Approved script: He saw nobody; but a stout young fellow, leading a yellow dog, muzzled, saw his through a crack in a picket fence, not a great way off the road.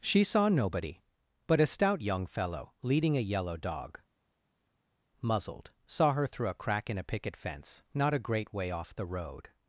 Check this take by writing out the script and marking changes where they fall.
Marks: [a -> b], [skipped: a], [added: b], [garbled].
[He -> She] saw nobody; but a stout young fellow, leading a yellow dog, muzzled, saw [his -> her] through a crack in a picket fence, not a great way off the road.